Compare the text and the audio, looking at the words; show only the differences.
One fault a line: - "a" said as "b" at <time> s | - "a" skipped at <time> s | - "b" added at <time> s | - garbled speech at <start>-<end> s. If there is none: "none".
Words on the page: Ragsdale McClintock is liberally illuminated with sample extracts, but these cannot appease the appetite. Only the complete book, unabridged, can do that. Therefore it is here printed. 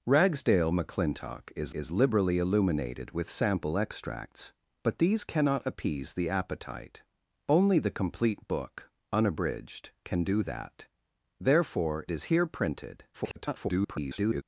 - "is" added at 1.7 s
- "it" skipped at 12.0 s
- garbled speech at 13.1-14.4 s